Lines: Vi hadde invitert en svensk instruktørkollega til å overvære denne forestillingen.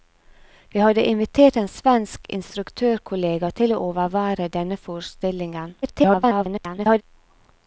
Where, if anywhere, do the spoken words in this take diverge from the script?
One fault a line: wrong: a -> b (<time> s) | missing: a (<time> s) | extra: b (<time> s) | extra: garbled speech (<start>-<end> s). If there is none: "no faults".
extra: garbled speech (5.8-7.0 s)